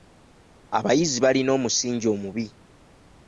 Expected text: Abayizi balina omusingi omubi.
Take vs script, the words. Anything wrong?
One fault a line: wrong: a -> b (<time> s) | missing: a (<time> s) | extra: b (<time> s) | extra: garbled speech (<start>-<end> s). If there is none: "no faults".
no faults